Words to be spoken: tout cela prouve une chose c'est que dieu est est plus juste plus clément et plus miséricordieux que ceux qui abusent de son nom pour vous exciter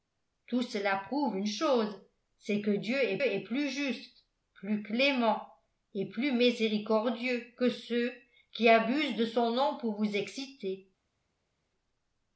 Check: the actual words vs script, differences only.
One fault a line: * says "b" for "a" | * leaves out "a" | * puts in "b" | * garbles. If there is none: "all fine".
all fine